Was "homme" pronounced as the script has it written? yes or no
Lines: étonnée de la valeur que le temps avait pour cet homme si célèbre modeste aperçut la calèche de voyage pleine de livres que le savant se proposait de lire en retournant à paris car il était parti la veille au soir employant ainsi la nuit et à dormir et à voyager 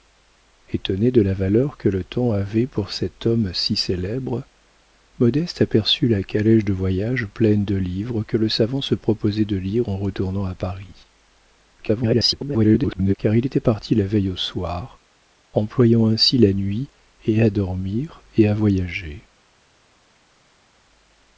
yes